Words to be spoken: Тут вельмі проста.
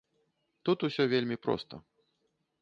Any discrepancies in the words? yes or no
yes